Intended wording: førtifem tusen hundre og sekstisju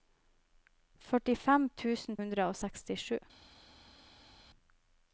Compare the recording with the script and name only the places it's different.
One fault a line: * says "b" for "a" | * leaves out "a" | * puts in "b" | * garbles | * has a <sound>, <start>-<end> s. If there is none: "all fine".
all fine